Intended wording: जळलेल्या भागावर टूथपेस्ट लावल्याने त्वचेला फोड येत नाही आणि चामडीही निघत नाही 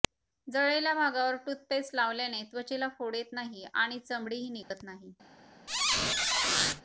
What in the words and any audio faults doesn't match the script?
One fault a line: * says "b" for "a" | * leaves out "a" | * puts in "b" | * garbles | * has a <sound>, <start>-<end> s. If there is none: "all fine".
* has a dropout, 4.6-4.7 s
* has a squeak, 5.7-6.8 s